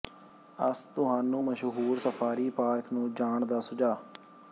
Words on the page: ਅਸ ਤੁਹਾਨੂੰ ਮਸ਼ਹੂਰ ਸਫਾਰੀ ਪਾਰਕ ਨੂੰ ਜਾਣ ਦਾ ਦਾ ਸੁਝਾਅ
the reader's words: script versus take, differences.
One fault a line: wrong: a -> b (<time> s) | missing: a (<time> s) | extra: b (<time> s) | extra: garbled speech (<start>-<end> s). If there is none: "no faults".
missing: ਦਾ (3.6 s)